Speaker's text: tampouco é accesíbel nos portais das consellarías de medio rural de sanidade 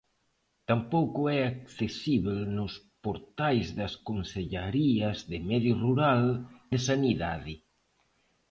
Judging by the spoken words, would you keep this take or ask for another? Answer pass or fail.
pass